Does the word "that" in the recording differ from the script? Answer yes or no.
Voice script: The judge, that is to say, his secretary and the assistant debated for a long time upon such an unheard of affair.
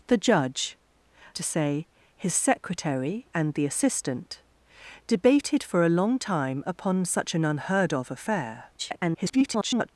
yes